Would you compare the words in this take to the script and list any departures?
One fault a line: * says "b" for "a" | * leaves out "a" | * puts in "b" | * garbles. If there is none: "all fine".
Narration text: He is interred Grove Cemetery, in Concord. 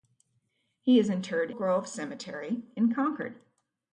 all fine